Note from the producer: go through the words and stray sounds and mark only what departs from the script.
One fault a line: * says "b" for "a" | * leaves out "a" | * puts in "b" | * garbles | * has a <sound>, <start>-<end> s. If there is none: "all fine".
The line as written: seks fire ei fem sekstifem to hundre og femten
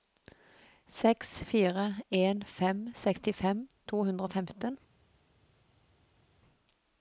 * says "en" for "ei"